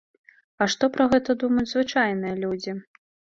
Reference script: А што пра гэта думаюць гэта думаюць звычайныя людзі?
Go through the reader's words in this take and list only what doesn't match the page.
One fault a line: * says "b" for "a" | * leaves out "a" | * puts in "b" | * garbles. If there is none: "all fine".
* leaves out "гэта думаюць"